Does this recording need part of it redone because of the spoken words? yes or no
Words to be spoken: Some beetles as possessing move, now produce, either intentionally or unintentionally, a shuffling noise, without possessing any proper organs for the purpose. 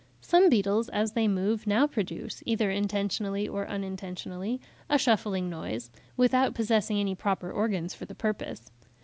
yes